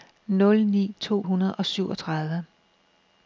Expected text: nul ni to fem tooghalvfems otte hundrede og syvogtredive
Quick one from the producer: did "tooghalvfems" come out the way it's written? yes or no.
no